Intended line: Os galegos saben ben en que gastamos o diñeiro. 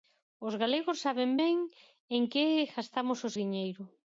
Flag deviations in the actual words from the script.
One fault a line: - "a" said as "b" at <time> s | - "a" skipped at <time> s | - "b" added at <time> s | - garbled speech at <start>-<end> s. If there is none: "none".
none